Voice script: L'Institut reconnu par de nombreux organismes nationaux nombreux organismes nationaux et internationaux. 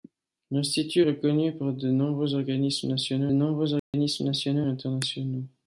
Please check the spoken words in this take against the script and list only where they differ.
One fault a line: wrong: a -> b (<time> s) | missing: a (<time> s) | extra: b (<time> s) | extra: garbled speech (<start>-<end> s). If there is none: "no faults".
no faults